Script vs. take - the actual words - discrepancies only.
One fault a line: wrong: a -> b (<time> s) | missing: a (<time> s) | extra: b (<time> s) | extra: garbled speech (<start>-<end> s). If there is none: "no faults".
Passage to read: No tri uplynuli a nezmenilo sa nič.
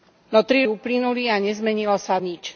no faults